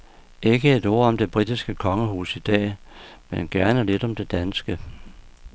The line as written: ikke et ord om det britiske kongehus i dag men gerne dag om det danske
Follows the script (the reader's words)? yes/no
no